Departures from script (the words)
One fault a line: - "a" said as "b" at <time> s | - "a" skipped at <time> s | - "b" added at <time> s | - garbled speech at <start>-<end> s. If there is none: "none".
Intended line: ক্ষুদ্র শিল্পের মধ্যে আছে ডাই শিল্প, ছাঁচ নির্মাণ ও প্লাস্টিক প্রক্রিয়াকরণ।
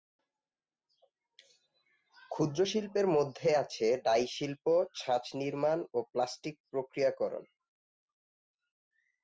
none